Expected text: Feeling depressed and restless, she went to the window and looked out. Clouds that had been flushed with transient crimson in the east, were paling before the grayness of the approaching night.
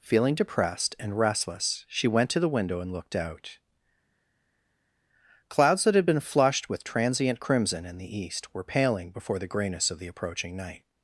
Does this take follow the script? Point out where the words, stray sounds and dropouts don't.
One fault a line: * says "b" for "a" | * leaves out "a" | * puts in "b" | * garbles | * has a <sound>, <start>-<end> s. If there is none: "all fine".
all fine